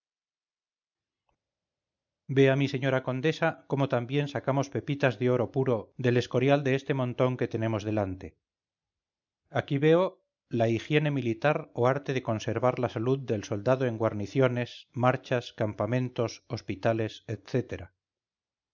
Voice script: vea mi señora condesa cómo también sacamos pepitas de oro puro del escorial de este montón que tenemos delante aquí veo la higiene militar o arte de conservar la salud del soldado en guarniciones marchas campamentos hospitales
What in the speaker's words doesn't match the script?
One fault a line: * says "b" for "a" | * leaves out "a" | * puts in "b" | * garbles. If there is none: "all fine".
all fine